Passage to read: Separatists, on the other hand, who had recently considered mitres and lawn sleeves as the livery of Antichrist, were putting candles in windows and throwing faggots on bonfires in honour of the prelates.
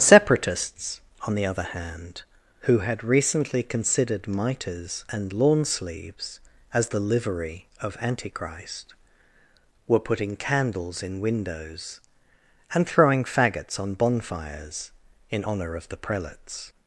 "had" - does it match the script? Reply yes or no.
yes